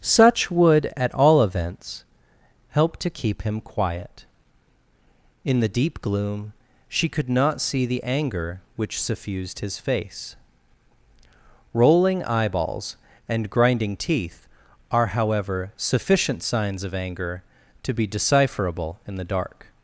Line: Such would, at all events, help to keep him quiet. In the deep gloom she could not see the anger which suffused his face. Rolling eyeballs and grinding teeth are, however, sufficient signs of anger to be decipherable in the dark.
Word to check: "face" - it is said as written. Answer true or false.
true